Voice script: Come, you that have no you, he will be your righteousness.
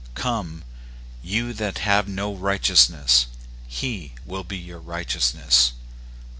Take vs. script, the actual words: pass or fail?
fail